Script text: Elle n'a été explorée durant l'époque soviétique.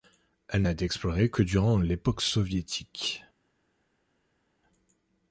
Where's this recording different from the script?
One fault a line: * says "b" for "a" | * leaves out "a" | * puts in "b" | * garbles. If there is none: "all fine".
* puts in "que"